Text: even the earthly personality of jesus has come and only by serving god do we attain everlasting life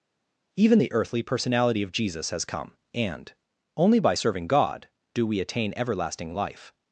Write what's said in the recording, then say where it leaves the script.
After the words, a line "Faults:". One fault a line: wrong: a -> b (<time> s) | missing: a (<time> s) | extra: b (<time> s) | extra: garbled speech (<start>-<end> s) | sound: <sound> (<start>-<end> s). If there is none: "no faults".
even the earthly personality of jesus has come and only by serving god do we attain everlasting life
Faults:
no faults